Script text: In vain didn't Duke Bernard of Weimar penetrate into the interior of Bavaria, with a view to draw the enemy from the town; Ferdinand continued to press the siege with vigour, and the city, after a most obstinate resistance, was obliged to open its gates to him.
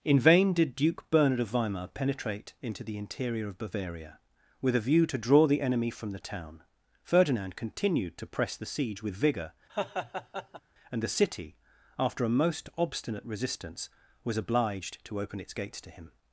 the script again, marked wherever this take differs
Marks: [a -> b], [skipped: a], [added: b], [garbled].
In vain [didn't -> did] Duke Bernard of Weimar penetrate into the interior of Bavaria, with a view to draw the enemy from the town; Ferdinand continued to press the siege with vigour, and the city, after a most obstinate resistance, was obliged to open its gates to him.